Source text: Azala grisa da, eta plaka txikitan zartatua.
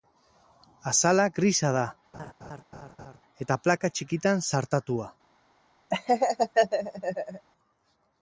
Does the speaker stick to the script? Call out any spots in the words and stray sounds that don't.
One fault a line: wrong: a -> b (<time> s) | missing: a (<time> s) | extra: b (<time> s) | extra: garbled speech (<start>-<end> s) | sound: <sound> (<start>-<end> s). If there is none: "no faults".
sound: laugh (2.1-3.2 s)
sound: laugh (5.9-7.5 s)